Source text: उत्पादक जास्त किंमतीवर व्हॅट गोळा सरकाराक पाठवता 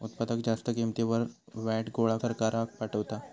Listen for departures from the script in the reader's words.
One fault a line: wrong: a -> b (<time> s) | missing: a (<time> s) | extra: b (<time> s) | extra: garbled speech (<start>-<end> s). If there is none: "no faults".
no faults